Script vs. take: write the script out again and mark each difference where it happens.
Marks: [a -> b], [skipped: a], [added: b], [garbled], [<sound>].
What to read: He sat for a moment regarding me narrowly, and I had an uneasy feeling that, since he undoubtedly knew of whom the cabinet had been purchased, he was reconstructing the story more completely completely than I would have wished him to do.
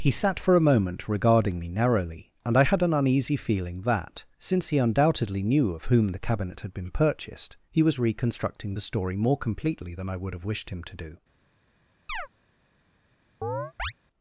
He sat for a moment regarding me narrowly, and I had an uneasy feeling that, since he undoubtedly knew of whom the cabinet had been purchased, he was reconstructing the story more completely [skipped: completely] than I would have wished him to do. [chirp] [chirp]